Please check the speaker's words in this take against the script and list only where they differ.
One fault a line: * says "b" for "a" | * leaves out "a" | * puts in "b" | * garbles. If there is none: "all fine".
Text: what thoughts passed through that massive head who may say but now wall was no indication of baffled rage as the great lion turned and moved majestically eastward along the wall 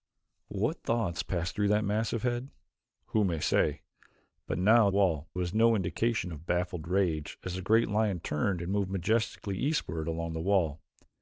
all fine